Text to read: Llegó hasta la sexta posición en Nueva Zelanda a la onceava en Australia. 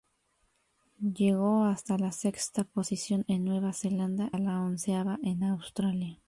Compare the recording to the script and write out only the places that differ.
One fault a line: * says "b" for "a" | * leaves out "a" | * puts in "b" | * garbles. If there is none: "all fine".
all fine